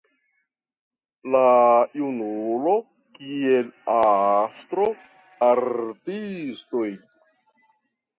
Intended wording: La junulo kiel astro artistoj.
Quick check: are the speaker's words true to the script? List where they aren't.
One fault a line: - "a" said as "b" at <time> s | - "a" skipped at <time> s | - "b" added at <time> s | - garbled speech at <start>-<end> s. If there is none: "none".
none